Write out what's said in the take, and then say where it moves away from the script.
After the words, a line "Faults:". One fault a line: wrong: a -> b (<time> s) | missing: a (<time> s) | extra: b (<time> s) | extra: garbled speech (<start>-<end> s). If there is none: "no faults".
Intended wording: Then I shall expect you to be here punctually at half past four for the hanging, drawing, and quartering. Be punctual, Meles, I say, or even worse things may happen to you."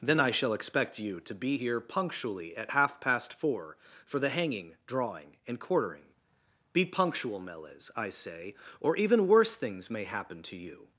Then I shall expect you to be here punctually at half past four for the hanging, drawing, and quartering. Be punctual, Meles, I say, or even worse things may happen to you."
Faults:
no faults